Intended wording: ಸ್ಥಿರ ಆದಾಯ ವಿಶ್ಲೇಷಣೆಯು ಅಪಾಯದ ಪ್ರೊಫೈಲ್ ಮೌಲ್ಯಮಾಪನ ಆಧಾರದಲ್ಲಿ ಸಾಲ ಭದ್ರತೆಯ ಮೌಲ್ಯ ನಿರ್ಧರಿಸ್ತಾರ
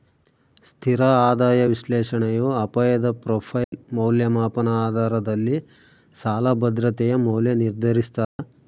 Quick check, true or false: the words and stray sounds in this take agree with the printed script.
false